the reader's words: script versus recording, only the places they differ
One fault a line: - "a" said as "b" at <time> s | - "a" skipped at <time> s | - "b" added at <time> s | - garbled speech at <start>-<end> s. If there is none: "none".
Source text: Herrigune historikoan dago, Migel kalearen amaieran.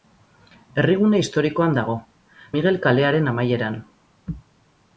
none